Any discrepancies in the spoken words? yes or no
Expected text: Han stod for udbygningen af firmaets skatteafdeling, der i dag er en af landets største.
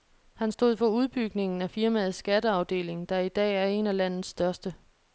no